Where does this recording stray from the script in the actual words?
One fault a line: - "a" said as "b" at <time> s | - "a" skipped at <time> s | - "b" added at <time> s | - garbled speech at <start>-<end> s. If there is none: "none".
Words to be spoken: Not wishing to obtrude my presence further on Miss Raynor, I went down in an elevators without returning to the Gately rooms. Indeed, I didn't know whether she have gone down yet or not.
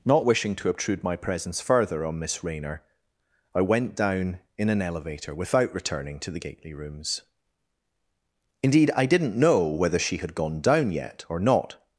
- "elevators" said as "elevator" at 4.8 s
- "have" said as "had" at 10.2 s